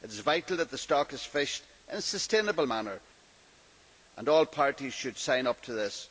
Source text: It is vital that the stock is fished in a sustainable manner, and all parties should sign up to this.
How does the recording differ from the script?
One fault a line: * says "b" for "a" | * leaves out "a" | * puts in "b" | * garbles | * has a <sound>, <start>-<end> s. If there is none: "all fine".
all fine